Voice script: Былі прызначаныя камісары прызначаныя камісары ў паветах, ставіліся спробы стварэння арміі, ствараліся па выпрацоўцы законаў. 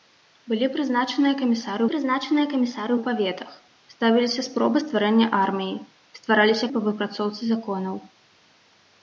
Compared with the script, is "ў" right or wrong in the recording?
right